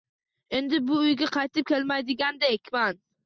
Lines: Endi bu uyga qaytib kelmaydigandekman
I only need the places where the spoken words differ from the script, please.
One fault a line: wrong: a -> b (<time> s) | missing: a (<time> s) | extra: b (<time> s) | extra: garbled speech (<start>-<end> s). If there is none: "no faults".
no faults